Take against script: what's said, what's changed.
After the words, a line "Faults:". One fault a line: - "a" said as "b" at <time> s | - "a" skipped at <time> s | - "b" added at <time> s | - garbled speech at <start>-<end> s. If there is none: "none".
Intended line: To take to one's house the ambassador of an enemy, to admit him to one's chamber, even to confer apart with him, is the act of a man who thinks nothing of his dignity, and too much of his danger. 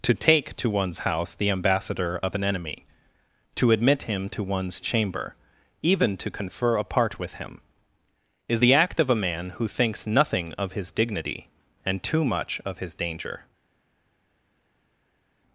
To take to one's house the ambassador of an enemy, to admit him to one's chamber, even to confer apart with him, is the act of a man who thinks nothing of his dignity, and too much of his danger.
Faults:
none